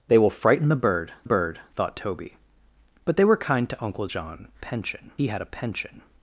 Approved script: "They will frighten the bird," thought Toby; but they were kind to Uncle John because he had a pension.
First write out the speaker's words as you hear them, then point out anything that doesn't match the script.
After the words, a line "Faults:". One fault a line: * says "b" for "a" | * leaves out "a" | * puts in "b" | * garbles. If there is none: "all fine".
"They will frighten the bird bird," thought Toby; but they were kind to Uncle John pension he had a pension.
Faults:
* puts in "bird"
* says "pension" for "because"